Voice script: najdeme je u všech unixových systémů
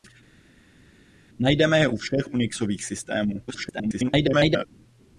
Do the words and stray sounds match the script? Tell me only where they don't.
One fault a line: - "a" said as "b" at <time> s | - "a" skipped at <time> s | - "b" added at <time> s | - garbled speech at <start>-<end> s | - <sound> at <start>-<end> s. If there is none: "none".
- garbled speech at 3.5-4.7 s